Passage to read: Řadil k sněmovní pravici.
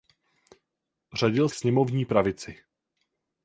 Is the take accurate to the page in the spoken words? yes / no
yes